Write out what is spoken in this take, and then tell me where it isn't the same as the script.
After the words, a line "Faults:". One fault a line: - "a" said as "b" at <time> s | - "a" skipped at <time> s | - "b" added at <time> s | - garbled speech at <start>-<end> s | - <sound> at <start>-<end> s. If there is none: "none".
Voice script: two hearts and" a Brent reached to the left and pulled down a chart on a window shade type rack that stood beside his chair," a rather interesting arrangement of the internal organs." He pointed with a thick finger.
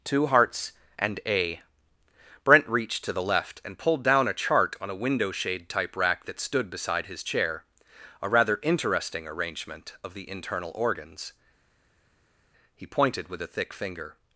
two hearts and" a Brent reached to the left and pulled down a chart on a window shade type rack that stood beside his chair," a rather interesting arrangement of the internal organs." He pointed with a thick finger.
Faults:
none